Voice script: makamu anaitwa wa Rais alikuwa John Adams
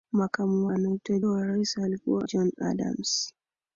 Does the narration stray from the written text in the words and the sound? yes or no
no